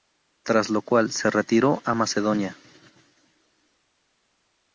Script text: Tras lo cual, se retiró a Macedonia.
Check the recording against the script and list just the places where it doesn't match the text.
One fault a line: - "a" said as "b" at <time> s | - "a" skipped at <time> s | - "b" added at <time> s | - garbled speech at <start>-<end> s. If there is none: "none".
none